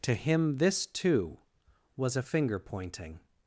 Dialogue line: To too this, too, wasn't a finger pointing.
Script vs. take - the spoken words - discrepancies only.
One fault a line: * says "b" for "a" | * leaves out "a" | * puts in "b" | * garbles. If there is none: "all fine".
* says "him" for "too"
* says "was" for "wasn't"